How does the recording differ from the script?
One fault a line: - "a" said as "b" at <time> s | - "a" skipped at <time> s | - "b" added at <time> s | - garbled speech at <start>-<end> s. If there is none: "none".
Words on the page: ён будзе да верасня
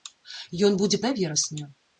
none